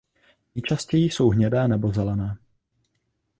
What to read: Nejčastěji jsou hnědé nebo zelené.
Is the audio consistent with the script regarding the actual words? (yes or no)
yes